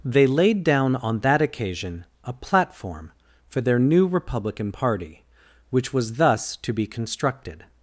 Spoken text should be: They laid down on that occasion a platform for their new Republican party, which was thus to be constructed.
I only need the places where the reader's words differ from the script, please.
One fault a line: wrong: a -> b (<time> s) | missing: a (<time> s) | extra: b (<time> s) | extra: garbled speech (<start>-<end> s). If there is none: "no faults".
no faults